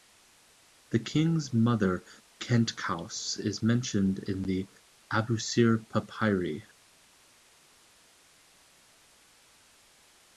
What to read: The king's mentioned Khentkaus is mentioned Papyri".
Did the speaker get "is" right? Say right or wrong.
right